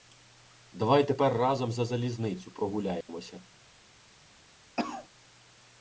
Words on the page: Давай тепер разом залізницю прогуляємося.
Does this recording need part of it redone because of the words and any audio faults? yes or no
yes